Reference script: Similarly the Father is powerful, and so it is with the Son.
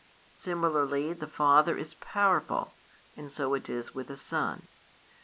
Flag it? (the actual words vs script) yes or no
no